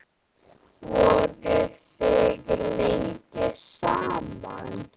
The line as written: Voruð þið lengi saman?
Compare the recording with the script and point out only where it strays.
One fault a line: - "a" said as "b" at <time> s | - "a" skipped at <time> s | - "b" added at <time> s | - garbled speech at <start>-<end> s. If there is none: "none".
none